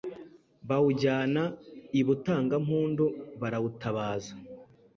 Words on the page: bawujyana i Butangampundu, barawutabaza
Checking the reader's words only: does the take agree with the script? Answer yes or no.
yes